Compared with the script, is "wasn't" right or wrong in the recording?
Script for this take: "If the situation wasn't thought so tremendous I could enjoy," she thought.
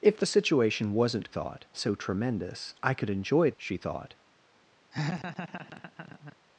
right